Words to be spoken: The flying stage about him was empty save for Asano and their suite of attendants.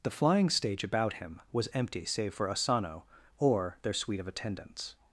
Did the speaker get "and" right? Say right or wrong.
wrong